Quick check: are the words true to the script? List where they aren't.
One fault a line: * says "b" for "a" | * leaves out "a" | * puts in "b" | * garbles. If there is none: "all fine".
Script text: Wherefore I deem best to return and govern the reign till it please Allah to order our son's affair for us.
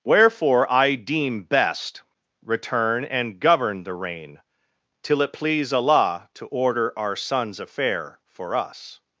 * leaves out "to"